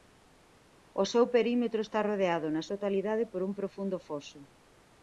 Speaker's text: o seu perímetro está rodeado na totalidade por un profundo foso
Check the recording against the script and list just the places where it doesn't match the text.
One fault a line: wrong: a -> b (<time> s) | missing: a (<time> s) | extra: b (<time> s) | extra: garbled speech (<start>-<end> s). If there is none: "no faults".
no faults